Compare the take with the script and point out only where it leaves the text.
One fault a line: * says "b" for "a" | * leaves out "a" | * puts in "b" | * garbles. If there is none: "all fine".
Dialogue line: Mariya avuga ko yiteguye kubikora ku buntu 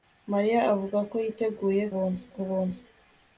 * says "buntu" for "kubikora"